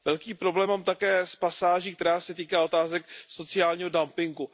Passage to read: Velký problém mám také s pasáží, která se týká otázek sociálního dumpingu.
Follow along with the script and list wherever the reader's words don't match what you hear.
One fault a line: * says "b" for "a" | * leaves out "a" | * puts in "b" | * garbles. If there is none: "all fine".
all fine